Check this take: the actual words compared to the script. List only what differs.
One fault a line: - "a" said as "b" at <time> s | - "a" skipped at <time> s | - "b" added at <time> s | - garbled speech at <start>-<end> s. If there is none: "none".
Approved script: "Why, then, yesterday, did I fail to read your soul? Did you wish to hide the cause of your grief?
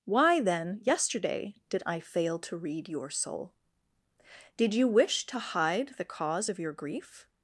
none